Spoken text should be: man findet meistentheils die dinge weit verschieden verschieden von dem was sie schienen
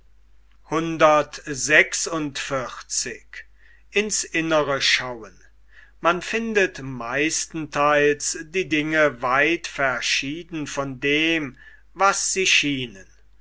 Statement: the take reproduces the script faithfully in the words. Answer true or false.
false